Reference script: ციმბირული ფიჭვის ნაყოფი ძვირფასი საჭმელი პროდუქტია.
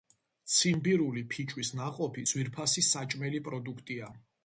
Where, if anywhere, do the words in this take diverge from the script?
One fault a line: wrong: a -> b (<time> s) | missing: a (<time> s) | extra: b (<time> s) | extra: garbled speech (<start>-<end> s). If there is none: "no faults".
no faults